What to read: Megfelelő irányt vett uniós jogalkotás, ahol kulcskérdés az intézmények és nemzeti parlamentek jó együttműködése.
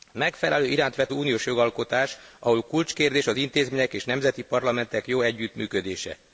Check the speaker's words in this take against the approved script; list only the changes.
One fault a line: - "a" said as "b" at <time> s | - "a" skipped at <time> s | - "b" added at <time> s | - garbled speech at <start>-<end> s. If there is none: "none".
none